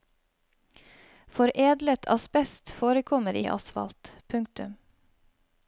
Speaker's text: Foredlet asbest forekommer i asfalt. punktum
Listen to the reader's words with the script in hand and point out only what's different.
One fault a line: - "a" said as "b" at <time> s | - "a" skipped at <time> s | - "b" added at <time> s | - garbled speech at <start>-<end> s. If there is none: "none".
none